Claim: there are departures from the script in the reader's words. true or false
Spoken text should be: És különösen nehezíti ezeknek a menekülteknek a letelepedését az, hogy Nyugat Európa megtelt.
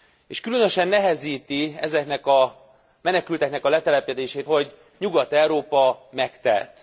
true